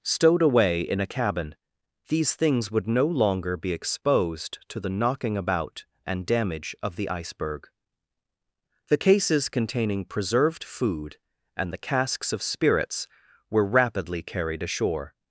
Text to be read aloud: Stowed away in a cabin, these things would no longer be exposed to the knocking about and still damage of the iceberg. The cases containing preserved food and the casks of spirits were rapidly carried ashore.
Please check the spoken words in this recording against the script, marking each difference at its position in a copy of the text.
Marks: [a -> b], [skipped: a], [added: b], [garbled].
Stowed away in a cabin, these things would no longer be exposed to the knocking about and [skipped: still] damage of the iceberg. The cases containing preserved food and the casks of spirits were rapidly carried ashore.